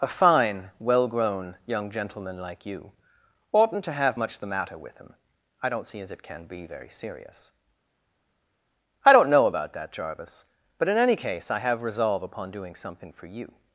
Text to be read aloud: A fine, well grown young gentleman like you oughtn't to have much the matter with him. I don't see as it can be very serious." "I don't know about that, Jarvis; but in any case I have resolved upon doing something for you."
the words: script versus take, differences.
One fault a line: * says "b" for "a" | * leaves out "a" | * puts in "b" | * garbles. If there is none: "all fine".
* says "resolve" for "resolved"